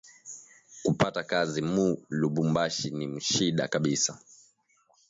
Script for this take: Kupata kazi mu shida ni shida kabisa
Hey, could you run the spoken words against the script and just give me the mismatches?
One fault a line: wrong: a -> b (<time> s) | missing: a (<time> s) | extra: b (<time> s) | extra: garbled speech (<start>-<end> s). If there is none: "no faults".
wrong: shida -> lubumbashi (2.2 s)